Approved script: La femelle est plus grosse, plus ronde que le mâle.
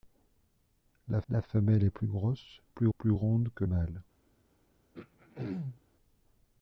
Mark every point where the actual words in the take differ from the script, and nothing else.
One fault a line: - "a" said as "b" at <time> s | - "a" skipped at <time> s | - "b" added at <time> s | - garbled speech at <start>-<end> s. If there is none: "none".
- "la" added at 1.3 s
- "plus" added at 3.0 s
- "le" skipped at 3.6 s